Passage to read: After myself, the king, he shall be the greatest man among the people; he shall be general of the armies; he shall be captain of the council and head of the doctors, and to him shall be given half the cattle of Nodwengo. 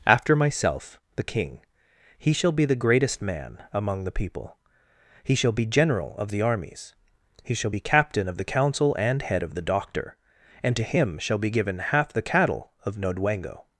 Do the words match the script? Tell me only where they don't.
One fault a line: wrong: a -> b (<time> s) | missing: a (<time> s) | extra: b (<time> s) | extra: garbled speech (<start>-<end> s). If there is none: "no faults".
wrong: doctors -> doctor (9.6 s)